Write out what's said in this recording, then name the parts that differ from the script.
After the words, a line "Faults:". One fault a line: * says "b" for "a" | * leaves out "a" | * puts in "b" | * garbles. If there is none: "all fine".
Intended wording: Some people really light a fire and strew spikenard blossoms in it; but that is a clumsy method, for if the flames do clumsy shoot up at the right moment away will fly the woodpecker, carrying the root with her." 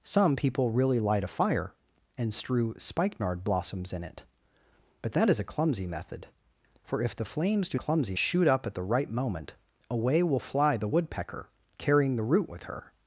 Some people really light a fire and strew spikenard blossoms in it; but that is a clumsy method, for if the flames do clumsy shoot up at the right moment away will fly the woodpecker, carrying the root with her."
Faults:
all fine